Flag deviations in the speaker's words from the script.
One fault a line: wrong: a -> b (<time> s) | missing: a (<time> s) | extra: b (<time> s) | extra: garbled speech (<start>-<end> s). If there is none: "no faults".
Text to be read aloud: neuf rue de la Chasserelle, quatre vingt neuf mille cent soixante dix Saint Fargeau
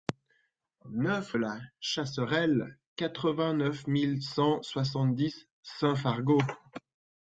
missing: rue de (1.3 s)